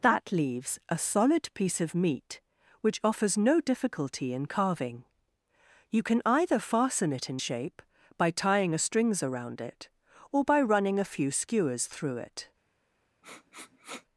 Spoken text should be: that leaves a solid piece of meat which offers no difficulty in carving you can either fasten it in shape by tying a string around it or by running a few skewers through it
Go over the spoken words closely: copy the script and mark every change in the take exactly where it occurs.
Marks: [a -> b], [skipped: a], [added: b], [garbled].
that leaves a solid piece of meat which offers no difficulty in carving you can either fasten it in shape by tying a [string -> strings] around it or by running a few skewers through it